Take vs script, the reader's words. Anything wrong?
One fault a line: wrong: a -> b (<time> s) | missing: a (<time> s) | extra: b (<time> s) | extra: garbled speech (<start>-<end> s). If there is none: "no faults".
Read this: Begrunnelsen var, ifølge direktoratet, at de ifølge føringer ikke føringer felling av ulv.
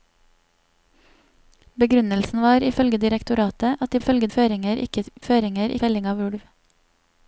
no faults